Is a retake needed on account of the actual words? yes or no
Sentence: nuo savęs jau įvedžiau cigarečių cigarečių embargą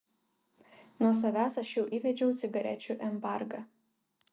yes